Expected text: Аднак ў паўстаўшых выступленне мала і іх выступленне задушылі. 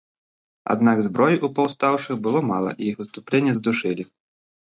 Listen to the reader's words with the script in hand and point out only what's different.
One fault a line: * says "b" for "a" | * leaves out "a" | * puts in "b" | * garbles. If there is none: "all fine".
* puts in "зброі"
* says "было" for "выступленне"